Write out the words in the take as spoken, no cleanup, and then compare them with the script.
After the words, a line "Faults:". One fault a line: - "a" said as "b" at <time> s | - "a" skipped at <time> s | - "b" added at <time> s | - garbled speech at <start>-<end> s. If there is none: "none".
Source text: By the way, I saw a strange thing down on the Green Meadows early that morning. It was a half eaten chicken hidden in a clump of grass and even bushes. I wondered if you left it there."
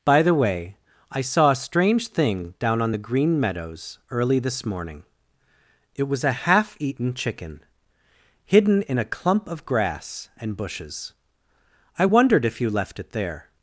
By the way, I saw a strange thing down on the Green Meadows early this morning. It was a half eaten chicken hidden in a clump of grass and bushes. I wondered if you left it there."
Faults:
- "that" said as "this" at 4.4 s
- "even" skipped at 10.6 s